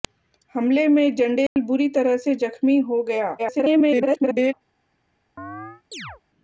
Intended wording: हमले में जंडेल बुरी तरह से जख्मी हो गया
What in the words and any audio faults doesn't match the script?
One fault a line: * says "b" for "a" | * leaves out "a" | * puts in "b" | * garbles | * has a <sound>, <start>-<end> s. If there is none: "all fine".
* has a dropout, 1.5-1.6 s
* garbles
* has a chirp, 5.4-6.2 s